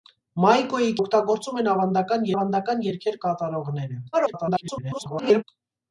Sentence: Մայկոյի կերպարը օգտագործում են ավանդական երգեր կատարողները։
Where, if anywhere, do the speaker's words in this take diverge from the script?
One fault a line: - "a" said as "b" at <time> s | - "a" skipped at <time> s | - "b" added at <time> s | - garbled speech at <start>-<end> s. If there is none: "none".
- "կերպարը" skipped at 0.9 s
- "ավանդական" added at 2.4 s
- garbled speech at 4.1-5.4 s